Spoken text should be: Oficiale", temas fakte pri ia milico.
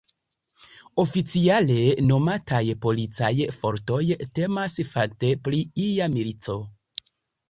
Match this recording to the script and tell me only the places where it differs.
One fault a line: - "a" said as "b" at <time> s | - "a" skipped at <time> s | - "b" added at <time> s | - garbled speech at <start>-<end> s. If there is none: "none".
- "nomataj policaj fortoj" added at 2.1 s